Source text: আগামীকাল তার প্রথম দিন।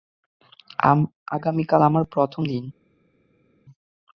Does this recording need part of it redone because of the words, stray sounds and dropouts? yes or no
yes